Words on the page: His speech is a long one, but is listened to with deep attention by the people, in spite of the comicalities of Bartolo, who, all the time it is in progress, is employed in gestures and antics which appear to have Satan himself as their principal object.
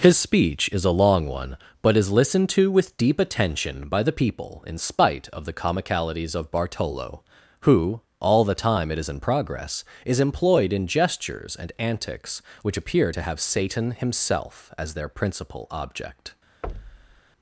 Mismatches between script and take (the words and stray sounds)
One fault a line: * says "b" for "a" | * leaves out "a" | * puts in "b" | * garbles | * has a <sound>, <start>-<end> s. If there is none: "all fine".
* has a thud, 16.6-17.2 s